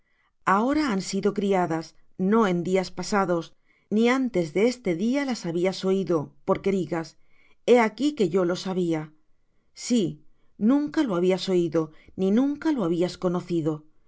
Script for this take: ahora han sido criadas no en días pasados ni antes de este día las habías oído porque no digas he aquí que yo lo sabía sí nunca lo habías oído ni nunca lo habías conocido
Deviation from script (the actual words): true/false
true